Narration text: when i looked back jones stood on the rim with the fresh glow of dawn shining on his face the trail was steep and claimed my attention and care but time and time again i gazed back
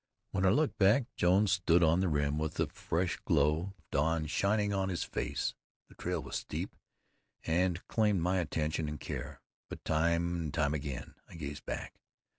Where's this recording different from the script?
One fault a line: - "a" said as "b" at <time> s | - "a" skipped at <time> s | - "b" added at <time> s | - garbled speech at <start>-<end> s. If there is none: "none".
none